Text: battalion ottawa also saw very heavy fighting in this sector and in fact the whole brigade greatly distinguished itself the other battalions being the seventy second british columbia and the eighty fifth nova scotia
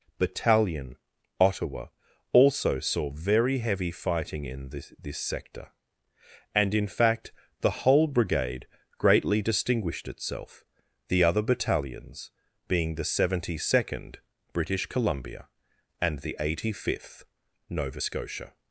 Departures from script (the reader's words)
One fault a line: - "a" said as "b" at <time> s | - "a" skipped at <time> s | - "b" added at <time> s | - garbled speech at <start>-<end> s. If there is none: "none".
- "this" added at 5.0 s